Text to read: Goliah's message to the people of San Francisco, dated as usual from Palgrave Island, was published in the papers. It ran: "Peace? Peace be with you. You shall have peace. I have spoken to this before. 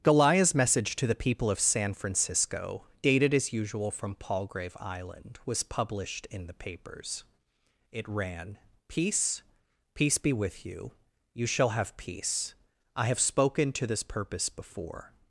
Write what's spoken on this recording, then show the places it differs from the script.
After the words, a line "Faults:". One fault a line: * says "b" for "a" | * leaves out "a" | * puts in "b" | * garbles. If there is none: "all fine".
Goliah's message to the people of San Francisco, dated as usual from Palgrave Island, was published in the papers. It ran: "Peace? Peace be with you. You shall have peace. I have spoken to this purpose before.
Faults:
* puts in "purpose"